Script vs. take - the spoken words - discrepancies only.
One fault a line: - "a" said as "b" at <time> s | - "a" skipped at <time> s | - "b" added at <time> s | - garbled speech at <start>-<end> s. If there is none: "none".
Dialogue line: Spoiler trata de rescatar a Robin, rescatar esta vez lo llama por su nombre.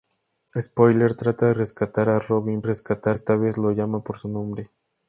none